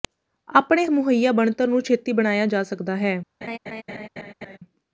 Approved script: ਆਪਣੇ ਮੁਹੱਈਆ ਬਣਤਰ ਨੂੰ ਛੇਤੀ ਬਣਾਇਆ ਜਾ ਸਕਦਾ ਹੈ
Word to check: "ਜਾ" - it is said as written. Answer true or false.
true